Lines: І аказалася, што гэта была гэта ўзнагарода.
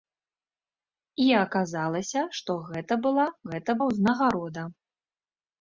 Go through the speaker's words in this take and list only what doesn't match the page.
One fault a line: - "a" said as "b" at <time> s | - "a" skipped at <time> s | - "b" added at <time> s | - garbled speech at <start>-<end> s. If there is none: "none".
none